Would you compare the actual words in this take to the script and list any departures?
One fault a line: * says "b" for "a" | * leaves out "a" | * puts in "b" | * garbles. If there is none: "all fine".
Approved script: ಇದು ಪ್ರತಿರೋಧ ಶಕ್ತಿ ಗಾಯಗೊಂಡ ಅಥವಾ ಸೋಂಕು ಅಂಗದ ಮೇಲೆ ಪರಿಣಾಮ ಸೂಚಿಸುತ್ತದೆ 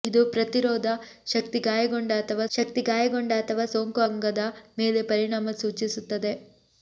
* puts in "ಶಕ್ತಿ ಗಾಯಗೊಂಡ ಅಥವಾ"